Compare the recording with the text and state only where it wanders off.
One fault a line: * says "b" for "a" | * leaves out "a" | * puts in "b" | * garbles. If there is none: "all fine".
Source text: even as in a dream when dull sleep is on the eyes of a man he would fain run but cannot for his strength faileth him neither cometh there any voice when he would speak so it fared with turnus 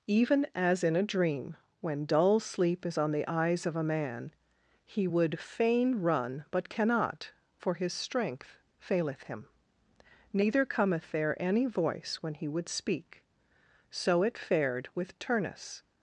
all fine